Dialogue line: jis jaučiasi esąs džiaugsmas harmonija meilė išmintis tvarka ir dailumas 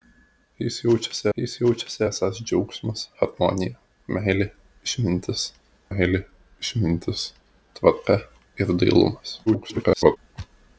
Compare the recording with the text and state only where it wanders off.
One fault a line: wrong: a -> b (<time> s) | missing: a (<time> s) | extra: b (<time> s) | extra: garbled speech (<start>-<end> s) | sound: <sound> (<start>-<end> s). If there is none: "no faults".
extra: jis jaučiasi (1.4 s)
extra: meilė išmintis (5.9 s)
extra: garbled speech (9.5-10.2 s)